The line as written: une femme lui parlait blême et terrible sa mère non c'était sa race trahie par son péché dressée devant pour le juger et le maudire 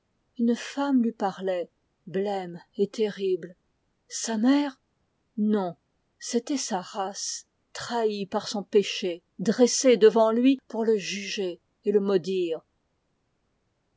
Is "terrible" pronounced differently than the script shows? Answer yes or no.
no